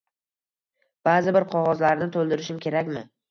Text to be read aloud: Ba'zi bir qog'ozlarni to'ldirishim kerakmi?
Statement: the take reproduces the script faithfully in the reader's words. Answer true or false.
true